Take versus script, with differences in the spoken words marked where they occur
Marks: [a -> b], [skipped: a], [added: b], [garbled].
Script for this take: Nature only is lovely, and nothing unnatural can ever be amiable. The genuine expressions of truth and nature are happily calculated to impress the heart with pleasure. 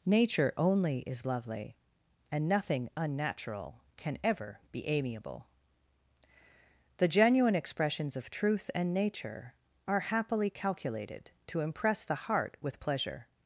Nature only is lovely, and nothing unnatural can ever be amiable. The genuine expressions of truth and nature are happily calculated to impress the heart with pleasure.